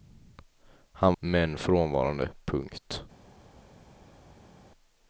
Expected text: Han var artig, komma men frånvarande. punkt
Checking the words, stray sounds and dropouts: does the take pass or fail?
fail